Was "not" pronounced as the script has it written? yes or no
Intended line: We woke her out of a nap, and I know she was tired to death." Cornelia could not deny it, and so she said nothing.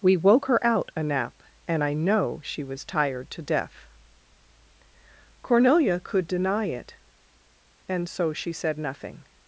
no